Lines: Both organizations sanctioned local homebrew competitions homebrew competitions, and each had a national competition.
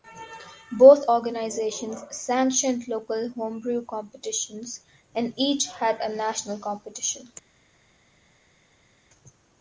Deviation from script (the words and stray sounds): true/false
true